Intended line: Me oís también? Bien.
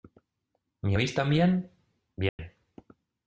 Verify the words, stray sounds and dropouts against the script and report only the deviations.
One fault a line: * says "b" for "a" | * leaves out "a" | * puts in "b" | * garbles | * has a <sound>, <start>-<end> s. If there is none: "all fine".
* has a dropout, 2.3-2.4 s